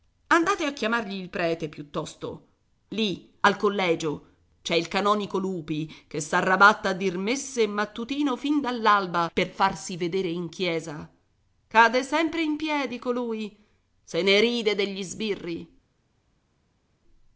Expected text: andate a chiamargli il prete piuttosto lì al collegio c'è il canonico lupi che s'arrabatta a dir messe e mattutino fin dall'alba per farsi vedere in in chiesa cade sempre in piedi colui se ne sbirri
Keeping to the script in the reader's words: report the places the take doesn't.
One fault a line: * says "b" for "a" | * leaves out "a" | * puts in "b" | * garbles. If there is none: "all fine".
* leaves out "in"
* puts in "ride degli"